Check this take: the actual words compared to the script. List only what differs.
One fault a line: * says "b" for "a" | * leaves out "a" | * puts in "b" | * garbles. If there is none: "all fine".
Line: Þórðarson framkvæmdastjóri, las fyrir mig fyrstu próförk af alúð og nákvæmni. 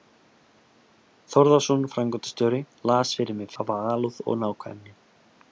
* leaves out "fyrstu próförk"